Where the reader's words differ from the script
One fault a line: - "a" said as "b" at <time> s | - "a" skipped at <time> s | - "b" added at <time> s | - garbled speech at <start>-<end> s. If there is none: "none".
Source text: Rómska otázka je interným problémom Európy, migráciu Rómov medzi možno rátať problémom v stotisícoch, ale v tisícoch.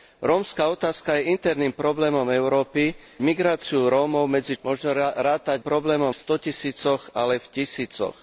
none